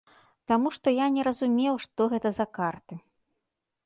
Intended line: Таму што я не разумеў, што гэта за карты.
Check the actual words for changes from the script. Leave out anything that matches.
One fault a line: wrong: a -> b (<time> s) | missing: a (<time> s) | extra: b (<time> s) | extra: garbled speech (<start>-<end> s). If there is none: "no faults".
no faults